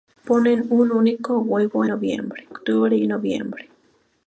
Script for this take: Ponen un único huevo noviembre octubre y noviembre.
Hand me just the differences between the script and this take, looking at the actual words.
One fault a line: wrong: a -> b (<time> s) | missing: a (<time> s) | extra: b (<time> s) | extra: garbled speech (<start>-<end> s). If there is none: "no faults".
no faults